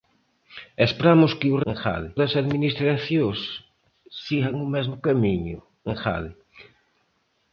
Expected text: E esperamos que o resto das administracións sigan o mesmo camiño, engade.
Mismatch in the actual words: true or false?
true